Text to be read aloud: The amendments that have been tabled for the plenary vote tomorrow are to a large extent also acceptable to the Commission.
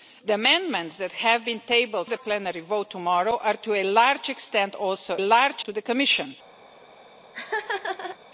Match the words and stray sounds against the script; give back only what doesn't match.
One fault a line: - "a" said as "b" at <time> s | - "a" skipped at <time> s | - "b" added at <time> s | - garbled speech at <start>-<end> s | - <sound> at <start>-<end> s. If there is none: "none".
- "for" skipped at 2.1 s
- "acceptable" said as "large" at 5.2 s
- laugh at 7.3-8.2 s